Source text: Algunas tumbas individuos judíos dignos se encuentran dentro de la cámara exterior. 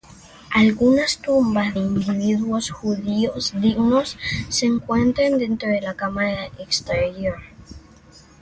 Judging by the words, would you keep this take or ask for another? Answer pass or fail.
pass